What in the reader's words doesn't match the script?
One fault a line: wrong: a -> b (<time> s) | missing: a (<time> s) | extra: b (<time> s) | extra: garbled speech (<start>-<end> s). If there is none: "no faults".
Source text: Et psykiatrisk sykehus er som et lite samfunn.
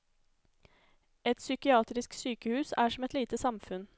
no faults